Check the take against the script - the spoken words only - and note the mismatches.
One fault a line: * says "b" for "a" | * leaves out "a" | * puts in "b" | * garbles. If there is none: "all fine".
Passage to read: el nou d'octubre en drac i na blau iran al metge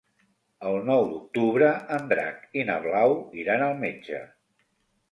all fine